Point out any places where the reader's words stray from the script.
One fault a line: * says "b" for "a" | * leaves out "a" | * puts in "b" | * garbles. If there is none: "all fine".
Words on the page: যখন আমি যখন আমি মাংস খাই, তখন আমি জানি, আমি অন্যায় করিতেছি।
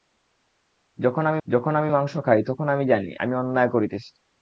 all fine